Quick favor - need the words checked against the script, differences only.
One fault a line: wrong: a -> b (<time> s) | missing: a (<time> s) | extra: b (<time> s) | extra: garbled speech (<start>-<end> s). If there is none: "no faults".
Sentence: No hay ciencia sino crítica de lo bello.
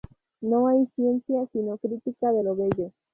no faults